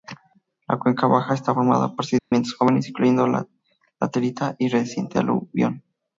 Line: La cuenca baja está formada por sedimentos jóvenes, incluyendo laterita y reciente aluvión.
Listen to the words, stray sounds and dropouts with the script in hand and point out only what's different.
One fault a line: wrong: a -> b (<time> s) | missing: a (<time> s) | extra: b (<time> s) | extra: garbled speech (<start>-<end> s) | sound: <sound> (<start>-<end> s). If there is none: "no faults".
sound: dropout (2.2-2.3 s)